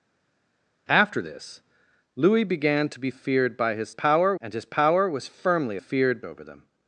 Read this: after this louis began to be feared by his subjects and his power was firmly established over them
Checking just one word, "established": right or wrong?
wrong